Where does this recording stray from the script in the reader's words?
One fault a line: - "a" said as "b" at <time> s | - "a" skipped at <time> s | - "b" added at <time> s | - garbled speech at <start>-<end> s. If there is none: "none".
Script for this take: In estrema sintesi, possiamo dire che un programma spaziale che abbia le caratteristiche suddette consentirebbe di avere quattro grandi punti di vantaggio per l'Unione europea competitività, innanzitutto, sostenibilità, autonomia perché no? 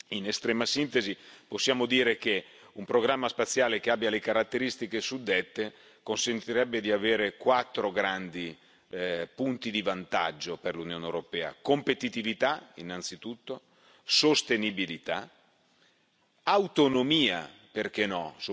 none